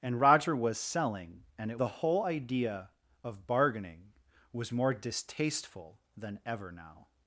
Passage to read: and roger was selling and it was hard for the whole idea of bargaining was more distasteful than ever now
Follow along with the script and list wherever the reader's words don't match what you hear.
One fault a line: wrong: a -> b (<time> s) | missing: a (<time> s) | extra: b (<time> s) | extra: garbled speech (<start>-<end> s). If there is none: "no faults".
missing: was hard for (1.8 s)